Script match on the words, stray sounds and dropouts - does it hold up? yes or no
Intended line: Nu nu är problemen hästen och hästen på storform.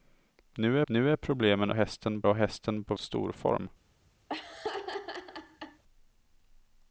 no